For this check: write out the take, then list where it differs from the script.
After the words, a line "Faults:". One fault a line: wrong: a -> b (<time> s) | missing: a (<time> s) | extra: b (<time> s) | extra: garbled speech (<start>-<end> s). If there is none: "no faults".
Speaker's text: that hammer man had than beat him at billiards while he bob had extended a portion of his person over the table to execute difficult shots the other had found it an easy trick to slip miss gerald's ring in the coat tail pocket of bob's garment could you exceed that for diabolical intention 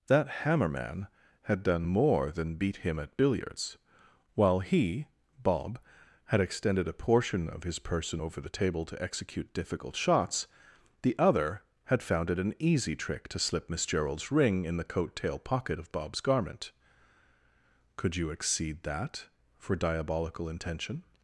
that hammer man had done more than beat him at billiards while he bob had extended a portion of his person over the table to execute difficult shots the other had found it an easy trick to slip miss gerald's ring in the coat tail pocket of bob's garment could you exceed that for diabolical intention
Faults:
extra: done more (1.6 s)